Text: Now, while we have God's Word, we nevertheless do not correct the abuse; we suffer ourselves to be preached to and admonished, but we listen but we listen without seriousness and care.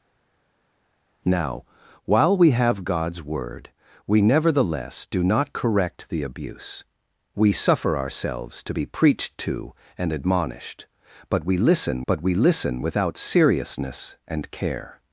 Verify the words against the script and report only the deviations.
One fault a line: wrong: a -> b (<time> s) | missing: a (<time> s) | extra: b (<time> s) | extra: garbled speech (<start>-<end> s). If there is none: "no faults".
no faults